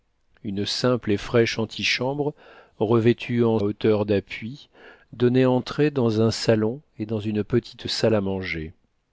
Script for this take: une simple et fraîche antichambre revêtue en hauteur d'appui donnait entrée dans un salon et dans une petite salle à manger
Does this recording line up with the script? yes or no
yes